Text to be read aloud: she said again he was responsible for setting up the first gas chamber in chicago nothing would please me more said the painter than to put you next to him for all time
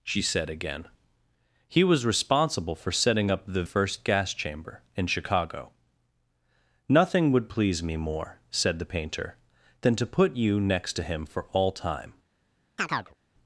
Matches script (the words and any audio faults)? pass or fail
fail